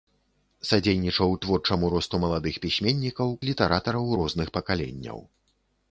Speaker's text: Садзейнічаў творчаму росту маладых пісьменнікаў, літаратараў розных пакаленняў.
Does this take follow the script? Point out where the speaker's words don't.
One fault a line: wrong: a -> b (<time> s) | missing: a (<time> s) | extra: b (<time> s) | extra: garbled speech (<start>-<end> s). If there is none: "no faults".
no faults